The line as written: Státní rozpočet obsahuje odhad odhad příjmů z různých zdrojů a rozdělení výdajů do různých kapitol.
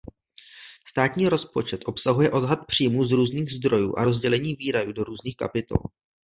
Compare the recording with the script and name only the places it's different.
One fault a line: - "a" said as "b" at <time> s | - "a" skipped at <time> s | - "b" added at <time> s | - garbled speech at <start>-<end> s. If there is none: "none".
- "odhad" skipped at 2.6 s